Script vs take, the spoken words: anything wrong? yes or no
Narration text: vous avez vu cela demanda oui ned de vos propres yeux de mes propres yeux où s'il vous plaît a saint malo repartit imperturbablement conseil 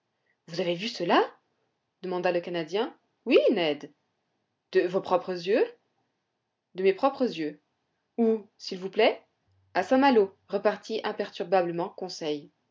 yes